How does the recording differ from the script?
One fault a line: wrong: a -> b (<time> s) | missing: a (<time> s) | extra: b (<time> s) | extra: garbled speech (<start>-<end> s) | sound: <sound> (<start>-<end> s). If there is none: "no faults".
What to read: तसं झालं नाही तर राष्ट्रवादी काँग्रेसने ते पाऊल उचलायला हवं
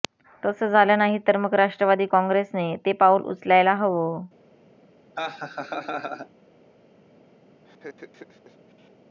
extra: मग (1.4 s)
sound: laugh (5.1-6.3 s)
sound: laugh (7.6-8.9 s)